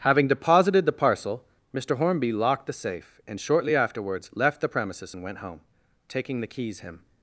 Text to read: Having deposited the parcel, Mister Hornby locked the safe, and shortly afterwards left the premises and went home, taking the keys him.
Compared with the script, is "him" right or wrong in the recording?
right